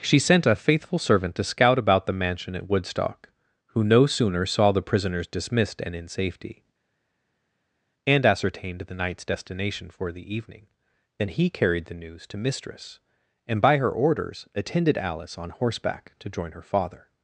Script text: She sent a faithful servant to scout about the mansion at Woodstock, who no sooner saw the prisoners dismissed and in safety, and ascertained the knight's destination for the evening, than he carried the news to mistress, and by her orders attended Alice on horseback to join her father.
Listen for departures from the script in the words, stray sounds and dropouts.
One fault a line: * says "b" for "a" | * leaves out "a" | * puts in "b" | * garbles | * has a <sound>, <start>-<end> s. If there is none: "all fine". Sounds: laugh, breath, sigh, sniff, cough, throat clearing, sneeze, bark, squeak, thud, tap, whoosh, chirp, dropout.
all fine